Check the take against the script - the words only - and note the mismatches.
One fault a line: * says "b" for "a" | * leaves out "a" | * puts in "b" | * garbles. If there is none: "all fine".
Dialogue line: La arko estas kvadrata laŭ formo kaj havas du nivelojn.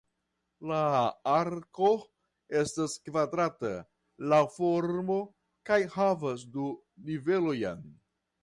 all fine